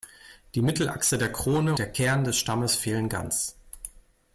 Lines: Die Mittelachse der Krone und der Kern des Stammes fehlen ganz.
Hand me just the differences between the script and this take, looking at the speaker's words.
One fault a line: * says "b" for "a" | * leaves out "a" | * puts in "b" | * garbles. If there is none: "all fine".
* leaves out "und"